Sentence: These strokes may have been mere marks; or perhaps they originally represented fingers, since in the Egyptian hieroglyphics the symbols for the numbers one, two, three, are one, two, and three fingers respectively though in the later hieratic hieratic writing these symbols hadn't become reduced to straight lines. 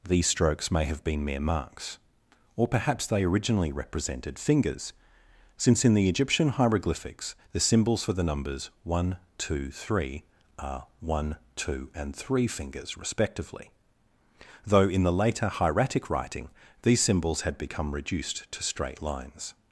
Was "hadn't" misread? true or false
true